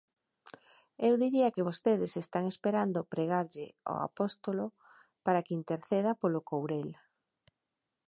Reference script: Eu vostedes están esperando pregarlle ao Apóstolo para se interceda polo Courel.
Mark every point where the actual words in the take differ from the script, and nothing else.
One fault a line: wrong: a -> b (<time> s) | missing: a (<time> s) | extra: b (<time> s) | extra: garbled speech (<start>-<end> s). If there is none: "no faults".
extra: diría que (1.2 s)
wrong: se -> que (5.4 s)